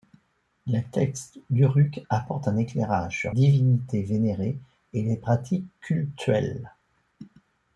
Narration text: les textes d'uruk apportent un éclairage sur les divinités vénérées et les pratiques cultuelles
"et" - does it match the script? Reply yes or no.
yes